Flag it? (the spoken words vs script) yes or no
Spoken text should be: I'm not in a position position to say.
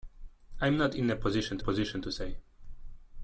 no